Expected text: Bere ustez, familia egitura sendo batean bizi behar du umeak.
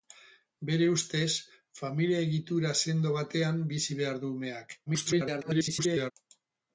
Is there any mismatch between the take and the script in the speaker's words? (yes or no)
yes